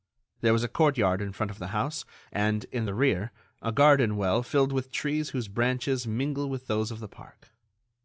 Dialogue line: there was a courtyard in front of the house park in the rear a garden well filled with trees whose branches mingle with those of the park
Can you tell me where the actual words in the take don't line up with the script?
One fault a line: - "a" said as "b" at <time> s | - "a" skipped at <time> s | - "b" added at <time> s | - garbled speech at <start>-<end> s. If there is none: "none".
- "park" said as "and" at 2.3 s